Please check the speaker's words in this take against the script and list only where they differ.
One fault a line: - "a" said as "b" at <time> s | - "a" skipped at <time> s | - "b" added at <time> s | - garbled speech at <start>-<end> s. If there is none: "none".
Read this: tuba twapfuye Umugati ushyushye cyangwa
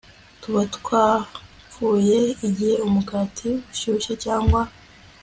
- "Igihe" added at 2.5 s